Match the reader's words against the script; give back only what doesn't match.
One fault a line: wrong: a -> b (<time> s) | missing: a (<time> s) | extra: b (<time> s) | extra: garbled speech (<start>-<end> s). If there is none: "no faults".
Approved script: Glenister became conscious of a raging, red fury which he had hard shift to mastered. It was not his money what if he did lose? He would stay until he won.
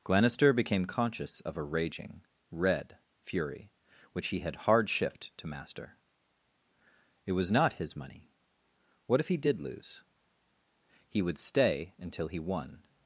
wrong: mastered -> master (5.5 s)